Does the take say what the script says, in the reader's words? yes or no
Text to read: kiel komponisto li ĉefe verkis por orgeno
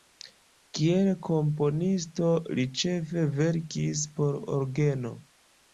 yes